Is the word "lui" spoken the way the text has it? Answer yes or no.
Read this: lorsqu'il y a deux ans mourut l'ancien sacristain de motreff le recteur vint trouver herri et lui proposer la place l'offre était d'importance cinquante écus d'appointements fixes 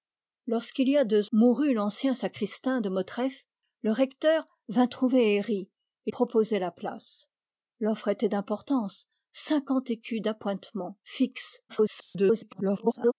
no